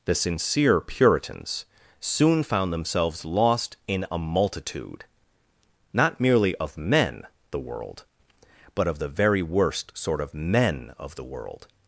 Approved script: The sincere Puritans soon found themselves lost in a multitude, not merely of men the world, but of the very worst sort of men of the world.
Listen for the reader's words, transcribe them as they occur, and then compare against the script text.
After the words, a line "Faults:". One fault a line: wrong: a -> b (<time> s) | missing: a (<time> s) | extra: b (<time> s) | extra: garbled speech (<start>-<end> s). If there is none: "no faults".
The sincere Puritans soon found themselves lost in a multitude, not merely of men the world, but of the very worst sort of men of the world.
Faults:
no faults